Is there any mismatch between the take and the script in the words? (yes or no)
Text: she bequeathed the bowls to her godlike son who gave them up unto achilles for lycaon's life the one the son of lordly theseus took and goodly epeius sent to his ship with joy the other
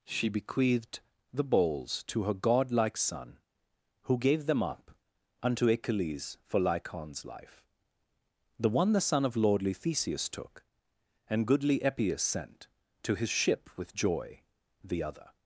no